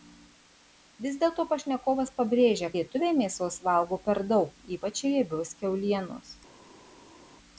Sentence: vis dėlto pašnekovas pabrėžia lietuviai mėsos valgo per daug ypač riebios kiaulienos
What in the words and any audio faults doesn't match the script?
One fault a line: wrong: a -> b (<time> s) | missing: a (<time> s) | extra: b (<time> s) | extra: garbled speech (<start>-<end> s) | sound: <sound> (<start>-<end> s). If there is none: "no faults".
no faults